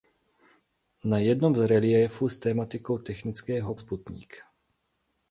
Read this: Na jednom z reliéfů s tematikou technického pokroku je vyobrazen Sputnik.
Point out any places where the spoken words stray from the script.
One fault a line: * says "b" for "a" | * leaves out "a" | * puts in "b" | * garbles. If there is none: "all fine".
* leaves out "pokroku je vyobrazen"